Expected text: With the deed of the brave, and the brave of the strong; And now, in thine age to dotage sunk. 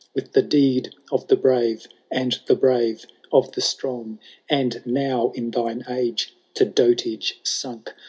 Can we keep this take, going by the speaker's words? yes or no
yes